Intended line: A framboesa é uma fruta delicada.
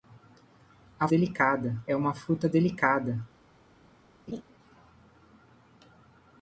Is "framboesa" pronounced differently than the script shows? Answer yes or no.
yes